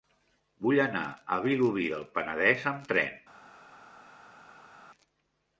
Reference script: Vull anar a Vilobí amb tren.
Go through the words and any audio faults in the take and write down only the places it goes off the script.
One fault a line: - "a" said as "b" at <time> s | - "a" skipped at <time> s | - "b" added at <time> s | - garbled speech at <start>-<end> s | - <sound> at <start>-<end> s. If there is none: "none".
- "del Penedès" added at 1.9 s